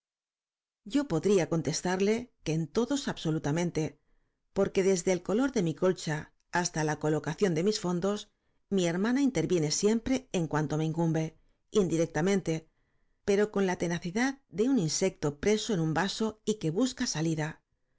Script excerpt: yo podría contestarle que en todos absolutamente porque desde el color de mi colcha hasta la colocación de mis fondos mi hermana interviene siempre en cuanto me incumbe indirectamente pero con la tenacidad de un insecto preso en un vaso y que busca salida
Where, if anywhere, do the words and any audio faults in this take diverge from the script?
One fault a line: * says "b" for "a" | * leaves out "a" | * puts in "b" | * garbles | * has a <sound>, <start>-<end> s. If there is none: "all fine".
all fine